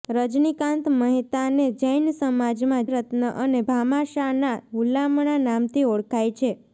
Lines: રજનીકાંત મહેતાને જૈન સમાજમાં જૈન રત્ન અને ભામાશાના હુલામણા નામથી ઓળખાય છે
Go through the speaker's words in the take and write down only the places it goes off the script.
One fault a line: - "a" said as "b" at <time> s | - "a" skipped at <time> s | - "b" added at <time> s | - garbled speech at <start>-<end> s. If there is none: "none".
- "જૈન" skipped at 2.9 s